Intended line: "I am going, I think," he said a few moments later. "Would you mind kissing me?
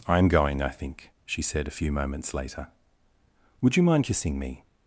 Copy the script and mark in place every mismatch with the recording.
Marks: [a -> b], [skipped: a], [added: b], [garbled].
"I am going, I think," [he -> she] said a few moments later. "Would you mind kissing me?